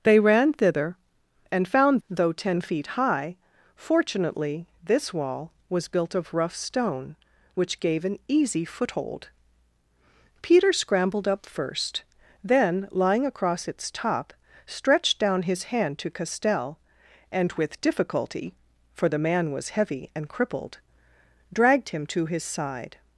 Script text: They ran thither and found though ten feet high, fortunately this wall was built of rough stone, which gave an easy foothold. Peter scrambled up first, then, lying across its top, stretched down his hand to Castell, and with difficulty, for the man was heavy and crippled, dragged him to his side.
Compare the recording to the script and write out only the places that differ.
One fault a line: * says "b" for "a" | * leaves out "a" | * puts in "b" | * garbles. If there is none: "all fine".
all fine